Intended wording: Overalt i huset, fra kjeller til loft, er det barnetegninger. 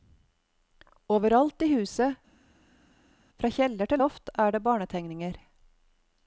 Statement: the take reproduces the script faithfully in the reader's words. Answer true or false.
true